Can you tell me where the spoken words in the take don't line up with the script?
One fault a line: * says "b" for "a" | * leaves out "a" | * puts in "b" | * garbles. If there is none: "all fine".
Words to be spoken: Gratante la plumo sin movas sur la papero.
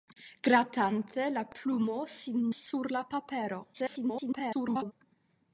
* leaves out "movas"
* garbles